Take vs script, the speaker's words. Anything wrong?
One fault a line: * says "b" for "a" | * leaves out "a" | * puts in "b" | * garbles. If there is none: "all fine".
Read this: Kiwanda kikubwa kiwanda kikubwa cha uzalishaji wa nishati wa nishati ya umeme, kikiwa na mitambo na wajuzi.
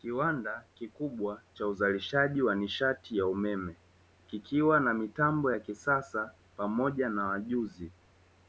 * leaves out "kiwanda kikubwa"
* leaves out "wa nishati"
* puts in "ya kisasa pamoja"